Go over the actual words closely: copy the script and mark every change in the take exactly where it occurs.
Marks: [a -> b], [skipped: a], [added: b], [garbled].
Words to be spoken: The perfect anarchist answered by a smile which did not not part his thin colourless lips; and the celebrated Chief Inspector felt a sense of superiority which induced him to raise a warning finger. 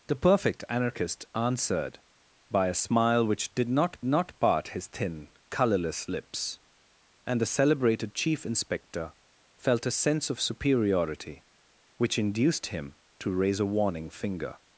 The perfect anarchist answered by a smile which did not not part his thin colourless lips; and the celebrated Chief Inspector felt a sense of superiority which induced him to raise a warning finger.